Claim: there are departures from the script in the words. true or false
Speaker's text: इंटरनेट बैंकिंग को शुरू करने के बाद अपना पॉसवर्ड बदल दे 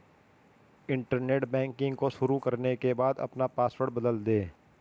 false